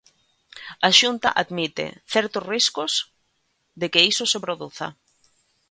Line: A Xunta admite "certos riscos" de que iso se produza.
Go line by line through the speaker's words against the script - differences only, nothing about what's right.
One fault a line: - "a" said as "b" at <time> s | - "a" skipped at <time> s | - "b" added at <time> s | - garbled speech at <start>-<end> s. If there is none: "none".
none